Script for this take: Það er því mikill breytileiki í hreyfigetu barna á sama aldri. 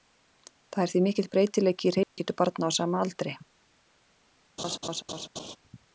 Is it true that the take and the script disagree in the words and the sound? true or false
true